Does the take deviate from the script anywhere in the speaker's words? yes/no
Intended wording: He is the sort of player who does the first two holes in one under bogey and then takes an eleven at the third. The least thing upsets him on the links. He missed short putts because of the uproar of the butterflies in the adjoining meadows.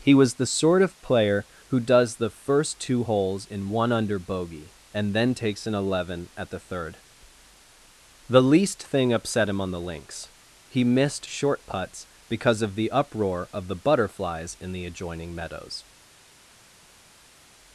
yes